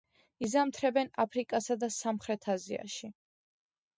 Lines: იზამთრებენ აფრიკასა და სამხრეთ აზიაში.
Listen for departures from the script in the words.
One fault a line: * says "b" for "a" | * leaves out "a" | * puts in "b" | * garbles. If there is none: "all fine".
all fine